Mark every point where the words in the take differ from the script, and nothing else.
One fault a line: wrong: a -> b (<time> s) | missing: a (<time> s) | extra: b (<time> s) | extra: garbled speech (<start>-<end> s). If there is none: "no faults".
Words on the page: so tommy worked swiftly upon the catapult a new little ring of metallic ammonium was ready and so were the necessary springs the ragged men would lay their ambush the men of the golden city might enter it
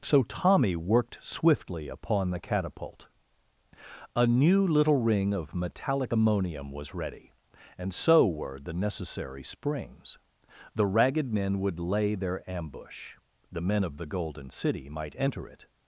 no faults